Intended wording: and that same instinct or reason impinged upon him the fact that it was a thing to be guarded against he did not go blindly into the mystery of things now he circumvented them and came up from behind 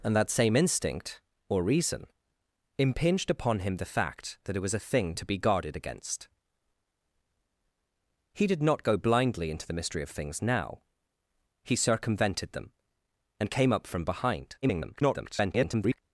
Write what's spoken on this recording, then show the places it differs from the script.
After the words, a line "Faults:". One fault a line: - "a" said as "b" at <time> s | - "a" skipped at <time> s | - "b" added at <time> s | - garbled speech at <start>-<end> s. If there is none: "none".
and that same instinct or reason impinged upon him the fact that it was a thing to be guarded against he did not go blindly into the mystery of things now he circumvented them and came up from behind [garbled]
Faults:
- garbled speech at 14.6-16.0 s